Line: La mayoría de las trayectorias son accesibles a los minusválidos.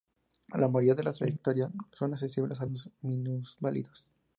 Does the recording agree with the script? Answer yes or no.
yes